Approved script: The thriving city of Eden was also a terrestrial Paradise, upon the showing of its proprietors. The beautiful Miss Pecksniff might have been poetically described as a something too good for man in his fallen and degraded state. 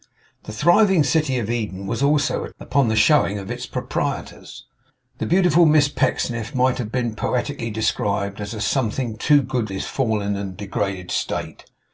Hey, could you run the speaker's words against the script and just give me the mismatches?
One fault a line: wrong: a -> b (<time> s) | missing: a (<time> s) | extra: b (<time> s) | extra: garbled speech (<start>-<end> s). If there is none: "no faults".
missing: terrestrial Paradise (2.5 s)
missing: for man in (9.7 s)